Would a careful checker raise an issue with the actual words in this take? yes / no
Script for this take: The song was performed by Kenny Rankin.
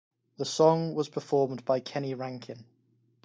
no